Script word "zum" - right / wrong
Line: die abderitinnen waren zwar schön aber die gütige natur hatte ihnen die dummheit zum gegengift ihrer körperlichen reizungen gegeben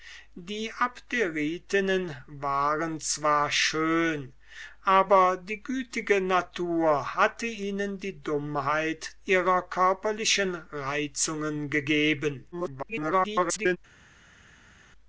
wrong